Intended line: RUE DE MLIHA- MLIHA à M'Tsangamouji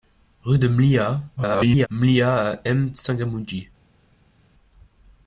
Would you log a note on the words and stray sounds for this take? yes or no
yes